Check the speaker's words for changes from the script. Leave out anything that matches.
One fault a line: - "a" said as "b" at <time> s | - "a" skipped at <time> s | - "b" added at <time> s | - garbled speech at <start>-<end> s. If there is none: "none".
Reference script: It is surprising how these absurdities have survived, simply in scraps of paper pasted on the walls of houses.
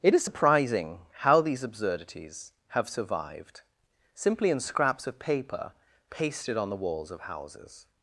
none